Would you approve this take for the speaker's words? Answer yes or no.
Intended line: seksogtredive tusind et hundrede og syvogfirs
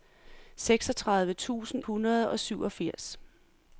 no